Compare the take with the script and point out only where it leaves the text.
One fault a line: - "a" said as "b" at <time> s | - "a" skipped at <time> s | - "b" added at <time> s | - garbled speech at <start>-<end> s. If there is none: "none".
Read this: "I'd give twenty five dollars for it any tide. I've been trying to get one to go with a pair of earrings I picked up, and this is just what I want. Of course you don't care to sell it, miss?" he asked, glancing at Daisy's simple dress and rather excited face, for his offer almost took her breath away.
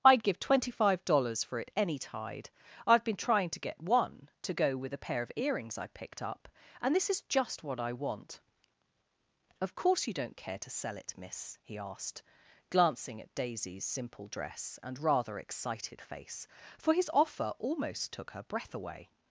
none